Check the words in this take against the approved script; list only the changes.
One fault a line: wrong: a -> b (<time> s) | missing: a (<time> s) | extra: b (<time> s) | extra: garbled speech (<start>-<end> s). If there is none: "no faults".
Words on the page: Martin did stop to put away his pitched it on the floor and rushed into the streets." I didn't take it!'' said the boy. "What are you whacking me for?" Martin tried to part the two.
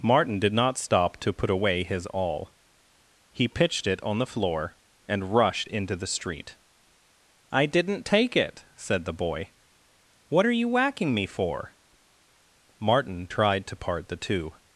extra: not (0.5 s)
extra: awl he (2.1 s)
wrong: streets -> street (6.1 s)